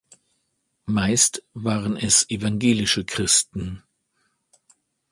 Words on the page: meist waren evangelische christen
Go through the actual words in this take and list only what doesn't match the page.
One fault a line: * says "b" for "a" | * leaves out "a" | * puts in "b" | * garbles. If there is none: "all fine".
* puts in "es"